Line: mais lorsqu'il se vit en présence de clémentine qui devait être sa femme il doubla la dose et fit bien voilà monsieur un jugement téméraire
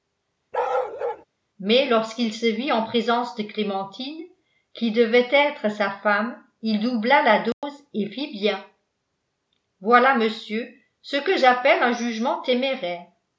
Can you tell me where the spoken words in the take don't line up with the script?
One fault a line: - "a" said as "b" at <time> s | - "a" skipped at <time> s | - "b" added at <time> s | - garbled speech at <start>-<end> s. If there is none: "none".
- "ce que j'appelle" added at 11.0 s